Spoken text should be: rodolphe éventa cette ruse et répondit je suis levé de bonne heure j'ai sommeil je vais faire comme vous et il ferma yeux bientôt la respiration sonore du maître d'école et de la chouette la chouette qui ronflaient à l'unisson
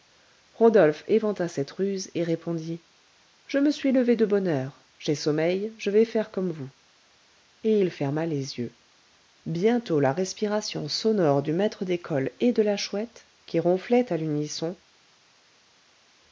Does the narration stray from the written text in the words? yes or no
yes